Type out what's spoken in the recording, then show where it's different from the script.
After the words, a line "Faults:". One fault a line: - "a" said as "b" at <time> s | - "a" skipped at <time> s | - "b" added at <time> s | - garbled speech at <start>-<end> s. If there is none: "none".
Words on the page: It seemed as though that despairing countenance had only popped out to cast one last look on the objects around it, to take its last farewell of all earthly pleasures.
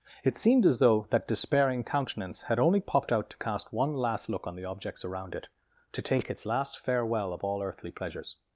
It seemed as though that despairing countenance had only popped out to cast one last look on the objects around it, to take its last farewell of all earthly pleasures.
Faults:
none